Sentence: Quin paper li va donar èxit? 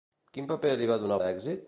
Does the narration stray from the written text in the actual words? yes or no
no